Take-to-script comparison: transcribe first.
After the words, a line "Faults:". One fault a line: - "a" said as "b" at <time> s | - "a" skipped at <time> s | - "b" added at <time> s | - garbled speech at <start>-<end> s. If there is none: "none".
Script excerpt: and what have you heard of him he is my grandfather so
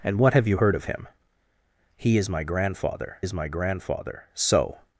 and what have you heard of him he is my grandfather is my grandfather so
Faults:
- "is my grandfather" added at 3.2 s